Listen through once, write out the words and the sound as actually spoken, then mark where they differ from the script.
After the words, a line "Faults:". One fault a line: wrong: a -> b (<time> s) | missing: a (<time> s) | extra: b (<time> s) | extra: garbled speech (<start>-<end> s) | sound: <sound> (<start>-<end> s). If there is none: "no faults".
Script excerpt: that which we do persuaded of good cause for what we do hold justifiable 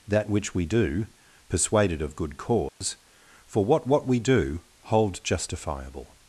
that which we do persuaded of good cause for what what we do hold justifiable
Faults:
sound: dropout (2.7-2.8 s)
extra: what (3.9 s)